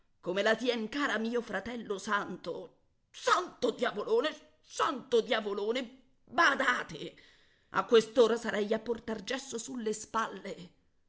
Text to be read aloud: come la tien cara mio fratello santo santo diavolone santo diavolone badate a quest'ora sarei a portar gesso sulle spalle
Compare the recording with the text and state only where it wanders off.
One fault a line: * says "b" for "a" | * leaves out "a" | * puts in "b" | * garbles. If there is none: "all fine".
all fine